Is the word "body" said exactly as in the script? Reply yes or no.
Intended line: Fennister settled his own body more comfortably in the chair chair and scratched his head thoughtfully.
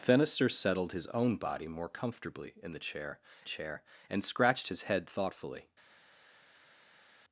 yes